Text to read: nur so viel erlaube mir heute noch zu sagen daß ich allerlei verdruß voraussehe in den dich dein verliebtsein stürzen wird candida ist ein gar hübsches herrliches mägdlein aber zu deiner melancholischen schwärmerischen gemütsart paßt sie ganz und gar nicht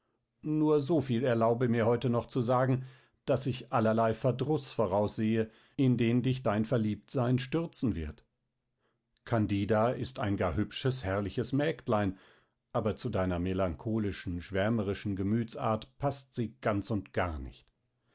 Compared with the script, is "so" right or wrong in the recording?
right